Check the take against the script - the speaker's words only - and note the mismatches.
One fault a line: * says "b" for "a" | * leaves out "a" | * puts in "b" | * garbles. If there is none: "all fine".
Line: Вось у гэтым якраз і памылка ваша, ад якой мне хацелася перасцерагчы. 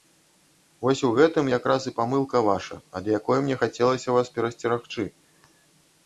* puts in "вас"